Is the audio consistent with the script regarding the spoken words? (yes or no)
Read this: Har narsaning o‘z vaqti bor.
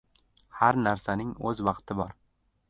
yes